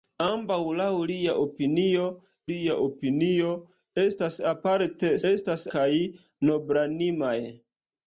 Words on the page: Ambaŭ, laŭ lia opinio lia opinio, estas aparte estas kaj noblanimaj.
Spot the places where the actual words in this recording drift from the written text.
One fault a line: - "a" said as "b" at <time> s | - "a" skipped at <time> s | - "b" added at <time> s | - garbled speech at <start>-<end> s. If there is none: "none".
none